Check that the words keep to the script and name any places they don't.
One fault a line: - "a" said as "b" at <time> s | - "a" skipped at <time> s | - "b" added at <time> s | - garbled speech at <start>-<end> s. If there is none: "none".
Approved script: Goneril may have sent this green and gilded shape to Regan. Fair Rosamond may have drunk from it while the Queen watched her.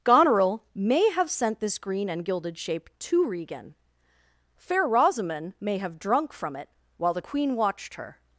none